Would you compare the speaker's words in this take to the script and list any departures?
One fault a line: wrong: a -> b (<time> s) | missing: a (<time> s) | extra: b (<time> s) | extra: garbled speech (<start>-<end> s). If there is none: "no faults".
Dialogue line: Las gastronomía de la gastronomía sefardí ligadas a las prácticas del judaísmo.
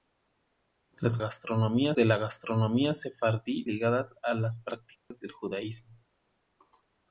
no faults